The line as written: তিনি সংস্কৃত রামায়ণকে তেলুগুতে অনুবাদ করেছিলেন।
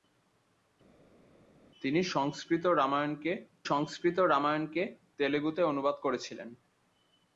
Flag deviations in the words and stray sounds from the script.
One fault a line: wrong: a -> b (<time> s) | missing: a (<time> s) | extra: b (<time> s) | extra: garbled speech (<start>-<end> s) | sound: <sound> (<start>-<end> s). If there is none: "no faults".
extra: সংস্কৃত রামায়ণকে (3.7 s)